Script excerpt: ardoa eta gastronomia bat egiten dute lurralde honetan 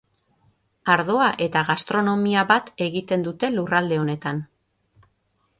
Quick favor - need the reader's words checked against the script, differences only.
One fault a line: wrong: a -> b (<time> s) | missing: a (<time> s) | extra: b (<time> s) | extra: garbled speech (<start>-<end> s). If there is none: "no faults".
no faults